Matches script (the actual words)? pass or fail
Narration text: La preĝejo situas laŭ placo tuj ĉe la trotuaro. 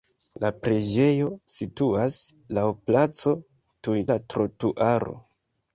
fail